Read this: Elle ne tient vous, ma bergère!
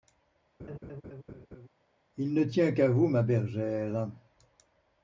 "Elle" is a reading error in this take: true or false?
true